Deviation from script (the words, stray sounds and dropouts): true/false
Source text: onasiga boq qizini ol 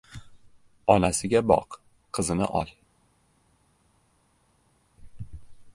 false